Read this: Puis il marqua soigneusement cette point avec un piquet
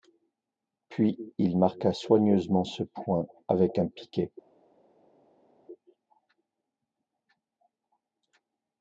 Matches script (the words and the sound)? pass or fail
fail